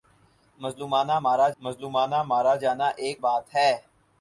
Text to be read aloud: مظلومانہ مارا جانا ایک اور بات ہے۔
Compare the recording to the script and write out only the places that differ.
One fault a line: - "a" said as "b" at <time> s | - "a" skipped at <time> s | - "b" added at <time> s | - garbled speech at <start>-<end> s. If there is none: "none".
- "مظلومانہ مارا" added at 1.6 s
- "اور" skipped at 3.2 s